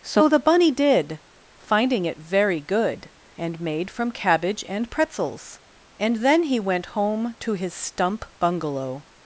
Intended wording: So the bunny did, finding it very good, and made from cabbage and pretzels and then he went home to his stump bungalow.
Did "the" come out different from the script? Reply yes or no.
no